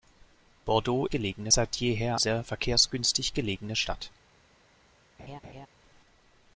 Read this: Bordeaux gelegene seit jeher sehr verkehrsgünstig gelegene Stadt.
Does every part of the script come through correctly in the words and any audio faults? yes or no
no